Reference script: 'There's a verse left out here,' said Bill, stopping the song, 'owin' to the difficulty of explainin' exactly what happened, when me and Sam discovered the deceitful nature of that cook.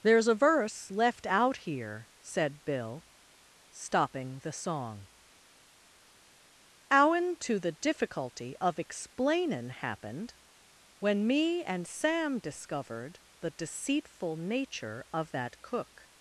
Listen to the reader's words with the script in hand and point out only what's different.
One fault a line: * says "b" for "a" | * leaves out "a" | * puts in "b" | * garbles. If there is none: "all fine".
* leaves out "exactly what"